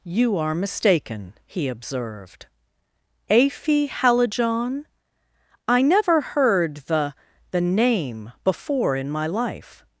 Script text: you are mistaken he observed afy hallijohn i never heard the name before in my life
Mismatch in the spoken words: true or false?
true